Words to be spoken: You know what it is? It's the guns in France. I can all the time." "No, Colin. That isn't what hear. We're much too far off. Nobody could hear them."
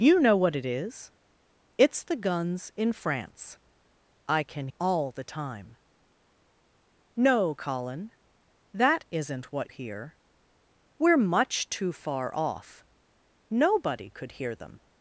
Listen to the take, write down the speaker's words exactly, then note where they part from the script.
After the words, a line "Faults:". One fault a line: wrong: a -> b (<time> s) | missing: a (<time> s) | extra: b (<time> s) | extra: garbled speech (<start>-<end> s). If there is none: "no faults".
You know what it is? It's the guns in France. I can all the time." "No, Colin. That isn't what hear. We're much too far off. Nobody could hear them."
Faults:
no faults